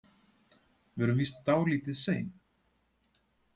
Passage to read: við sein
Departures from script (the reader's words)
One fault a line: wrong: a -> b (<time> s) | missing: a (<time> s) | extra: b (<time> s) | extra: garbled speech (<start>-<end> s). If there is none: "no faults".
extra: erum víst dálítið (1.1 s)